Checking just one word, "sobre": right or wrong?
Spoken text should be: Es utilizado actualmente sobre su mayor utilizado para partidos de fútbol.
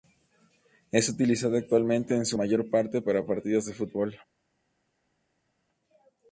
wrong